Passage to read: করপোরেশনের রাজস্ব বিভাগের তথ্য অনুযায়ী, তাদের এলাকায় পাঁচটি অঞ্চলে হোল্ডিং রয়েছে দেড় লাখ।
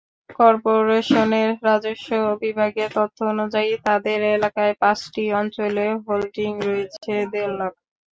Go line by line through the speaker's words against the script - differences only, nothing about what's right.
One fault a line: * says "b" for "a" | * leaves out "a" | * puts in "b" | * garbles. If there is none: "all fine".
all fine